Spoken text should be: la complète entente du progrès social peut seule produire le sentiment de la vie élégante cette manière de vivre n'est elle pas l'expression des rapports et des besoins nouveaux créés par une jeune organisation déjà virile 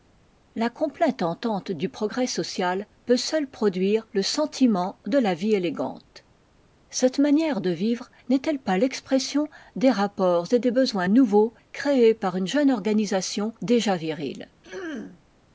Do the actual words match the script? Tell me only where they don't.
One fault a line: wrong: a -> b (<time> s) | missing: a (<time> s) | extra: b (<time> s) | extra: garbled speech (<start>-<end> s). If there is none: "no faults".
no faults